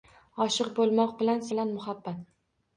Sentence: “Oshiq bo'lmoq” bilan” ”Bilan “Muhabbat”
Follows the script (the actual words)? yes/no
yes